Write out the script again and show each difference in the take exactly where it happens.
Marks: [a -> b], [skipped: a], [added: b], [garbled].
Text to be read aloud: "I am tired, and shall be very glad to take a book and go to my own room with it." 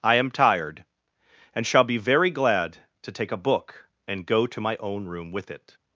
"I am tired, and shall be very glad to take a book and go to my own room with it."